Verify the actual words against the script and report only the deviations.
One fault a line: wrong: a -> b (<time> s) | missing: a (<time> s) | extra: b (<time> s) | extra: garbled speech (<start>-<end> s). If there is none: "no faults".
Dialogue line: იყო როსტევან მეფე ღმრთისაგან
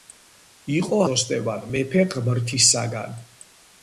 no faults